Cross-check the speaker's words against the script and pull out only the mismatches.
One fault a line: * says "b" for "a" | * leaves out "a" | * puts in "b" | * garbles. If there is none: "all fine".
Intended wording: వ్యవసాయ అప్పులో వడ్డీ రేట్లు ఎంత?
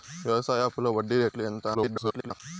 * garbles